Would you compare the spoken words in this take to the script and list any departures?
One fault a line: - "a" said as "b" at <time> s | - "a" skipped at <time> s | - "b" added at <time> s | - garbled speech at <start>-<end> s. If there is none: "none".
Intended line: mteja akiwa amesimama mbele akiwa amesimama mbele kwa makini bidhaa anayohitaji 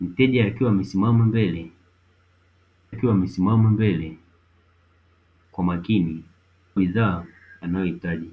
none